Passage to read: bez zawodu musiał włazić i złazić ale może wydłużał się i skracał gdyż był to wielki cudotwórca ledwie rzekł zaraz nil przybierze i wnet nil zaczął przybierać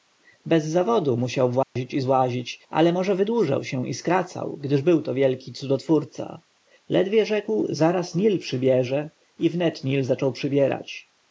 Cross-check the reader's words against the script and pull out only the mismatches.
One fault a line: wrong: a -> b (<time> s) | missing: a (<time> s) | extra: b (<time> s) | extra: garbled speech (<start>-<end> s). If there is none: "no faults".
no faults